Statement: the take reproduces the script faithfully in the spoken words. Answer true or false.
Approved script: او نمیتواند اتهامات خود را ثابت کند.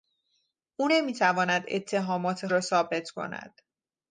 false